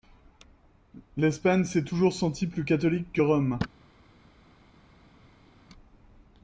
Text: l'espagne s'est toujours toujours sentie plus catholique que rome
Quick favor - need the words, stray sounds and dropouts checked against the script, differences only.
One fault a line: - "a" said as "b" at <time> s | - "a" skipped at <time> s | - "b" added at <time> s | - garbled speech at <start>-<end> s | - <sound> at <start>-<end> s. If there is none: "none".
- "toujours" skipped at 2.1 s